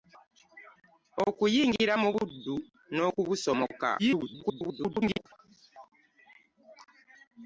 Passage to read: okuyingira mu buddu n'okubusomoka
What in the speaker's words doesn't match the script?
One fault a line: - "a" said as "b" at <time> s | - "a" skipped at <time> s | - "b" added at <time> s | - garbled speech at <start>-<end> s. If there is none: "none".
- garbled speech at 4.0-5.3 s